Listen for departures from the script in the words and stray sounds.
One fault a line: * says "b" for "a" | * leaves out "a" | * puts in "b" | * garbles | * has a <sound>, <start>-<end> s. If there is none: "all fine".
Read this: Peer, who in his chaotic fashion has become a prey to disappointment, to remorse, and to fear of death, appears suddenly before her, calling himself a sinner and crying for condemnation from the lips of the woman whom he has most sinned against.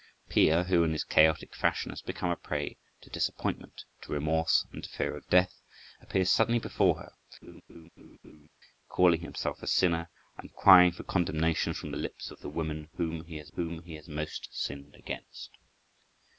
* has a laugh, 7.4-8.5 s
* puts in "whom he has"